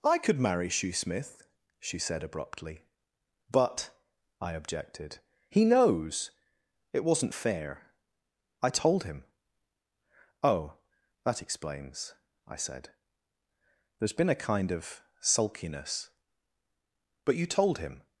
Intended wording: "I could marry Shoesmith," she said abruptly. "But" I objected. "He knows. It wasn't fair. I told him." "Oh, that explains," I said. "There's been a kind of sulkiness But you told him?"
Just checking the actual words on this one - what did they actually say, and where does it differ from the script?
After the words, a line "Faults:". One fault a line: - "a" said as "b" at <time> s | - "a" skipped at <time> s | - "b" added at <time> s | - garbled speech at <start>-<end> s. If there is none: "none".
"I could marry Shoesmith," she said abruptly. "But" I objected. "He knows. It wasn't fair. I told him." "Oh, that explains," I said. "There's been a kind of sulkiness But you told him?"
Faults:
none